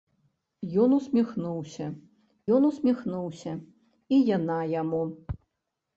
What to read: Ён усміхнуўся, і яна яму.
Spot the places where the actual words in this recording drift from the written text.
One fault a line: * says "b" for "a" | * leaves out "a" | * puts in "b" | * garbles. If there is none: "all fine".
* puts in "ён усміхнуўся"